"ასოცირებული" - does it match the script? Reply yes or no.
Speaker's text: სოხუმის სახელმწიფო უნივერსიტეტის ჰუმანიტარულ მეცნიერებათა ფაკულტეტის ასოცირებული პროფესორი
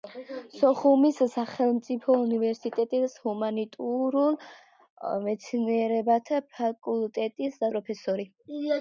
no